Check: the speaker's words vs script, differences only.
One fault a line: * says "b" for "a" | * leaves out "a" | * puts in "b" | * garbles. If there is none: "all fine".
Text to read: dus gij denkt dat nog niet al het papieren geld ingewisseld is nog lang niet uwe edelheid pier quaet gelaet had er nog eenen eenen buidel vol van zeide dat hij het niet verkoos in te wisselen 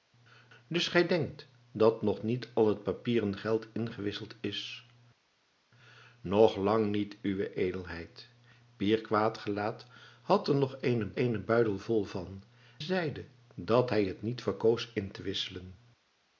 all fine